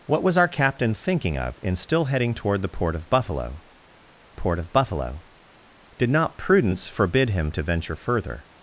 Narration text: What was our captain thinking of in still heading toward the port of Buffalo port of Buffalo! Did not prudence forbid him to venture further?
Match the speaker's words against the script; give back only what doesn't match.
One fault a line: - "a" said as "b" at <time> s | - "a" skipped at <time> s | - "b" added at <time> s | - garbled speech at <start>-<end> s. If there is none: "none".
none